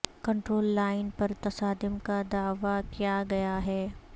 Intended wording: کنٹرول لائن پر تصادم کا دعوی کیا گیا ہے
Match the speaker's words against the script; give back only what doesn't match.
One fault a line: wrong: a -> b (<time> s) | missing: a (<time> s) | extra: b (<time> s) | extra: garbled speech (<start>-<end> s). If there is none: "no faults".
no faults